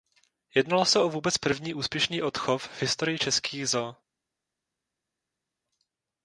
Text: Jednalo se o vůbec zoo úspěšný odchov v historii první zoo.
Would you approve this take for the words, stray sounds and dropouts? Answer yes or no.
no